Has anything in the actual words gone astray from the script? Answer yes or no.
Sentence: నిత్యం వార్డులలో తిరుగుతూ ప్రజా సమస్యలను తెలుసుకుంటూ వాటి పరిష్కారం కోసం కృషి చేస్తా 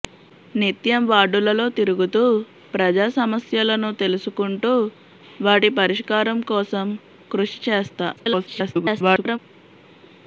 yes